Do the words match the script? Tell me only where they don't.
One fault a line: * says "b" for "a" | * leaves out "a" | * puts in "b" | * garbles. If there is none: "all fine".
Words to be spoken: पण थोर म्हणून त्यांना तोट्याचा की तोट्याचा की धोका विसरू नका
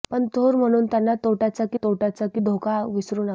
all fine